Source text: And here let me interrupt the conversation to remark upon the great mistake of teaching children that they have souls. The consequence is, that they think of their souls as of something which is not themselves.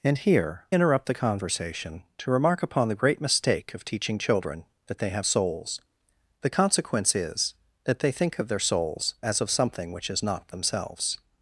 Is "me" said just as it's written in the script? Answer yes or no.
no